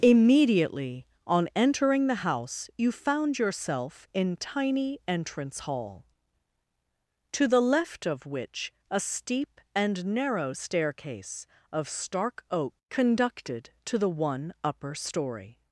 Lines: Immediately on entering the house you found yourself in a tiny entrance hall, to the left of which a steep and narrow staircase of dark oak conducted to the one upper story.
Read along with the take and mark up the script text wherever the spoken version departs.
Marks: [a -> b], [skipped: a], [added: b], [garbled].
Immediately on entering the house you found yourself in [skipped: a] tiny entrance hall, to the left of which a steep and narrow staircase of [dark -> stark] oak conducted to the one upper story.